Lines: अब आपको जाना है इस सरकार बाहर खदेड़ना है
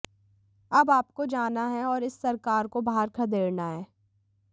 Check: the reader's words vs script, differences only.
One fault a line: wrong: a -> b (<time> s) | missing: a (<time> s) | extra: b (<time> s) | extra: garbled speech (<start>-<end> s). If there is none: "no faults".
extra: और (1.9 s)
extra: को (2.7 s)